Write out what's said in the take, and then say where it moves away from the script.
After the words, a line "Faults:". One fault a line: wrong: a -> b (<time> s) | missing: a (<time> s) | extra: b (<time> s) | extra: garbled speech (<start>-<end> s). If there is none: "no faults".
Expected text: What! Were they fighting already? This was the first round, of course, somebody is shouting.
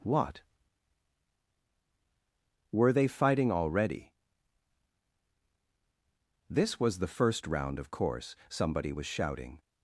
What! Were they fighting already? This was the first round, of course, somebody was shouting.
Faults:
wrong: is -> was (8.9 s)